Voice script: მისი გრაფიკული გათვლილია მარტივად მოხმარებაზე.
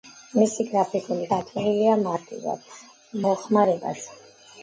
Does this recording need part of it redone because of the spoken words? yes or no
no